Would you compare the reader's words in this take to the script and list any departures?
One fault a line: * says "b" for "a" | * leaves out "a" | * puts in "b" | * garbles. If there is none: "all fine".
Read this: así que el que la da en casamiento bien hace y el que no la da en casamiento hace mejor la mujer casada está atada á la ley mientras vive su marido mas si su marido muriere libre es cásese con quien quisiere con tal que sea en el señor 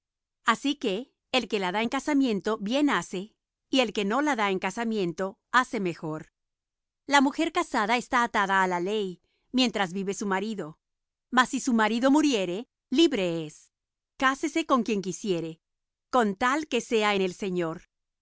all fine